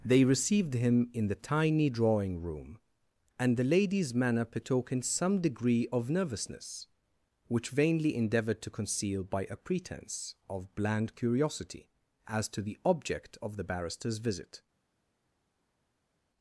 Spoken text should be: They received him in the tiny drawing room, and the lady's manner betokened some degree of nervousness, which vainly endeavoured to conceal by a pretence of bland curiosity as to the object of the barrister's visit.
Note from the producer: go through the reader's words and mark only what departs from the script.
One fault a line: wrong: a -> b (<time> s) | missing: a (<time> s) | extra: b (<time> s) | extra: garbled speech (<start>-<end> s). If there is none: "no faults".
no faults